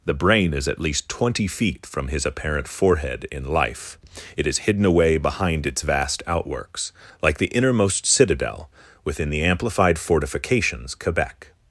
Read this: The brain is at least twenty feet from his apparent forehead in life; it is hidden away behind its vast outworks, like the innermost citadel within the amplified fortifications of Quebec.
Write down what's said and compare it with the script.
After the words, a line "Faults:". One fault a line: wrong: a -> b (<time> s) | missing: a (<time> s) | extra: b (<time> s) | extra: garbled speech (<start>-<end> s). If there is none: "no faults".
The brain is at least twenty feet from his apparent forehead in life; it is hidden away behind its vast outworks, like the innermost citadel within the amplified fortifications Quebec.
Faults:
missing: of (10.9 s)